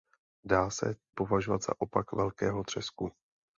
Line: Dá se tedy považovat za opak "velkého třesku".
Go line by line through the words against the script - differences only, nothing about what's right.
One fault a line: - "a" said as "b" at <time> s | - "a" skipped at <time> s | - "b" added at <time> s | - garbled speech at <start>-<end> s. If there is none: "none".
- "tedy" skipped at 0.9 s